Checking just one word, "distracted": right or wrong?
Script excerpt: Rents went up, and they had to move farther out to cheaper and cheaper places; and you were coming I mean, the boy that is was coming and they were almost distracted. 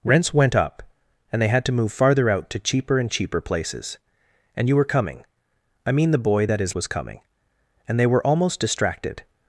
right